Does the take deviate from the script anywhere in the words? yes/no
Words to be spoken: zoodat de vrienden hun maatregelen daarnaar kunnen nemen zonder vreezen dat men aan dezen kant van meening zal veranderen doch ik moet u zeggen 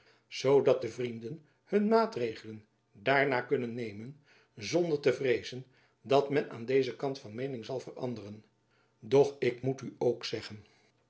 yes